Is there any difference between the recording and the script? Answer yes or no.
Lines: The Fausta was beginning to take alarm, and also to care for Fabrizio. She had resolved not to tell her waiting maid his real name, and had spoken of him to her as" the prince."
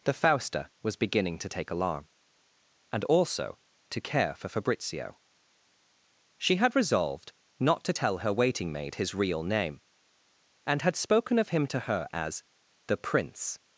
no